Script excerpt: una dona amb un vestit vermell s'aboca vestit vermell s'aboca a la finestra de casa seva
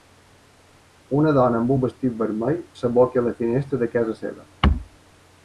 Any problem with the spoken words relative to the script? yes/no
yes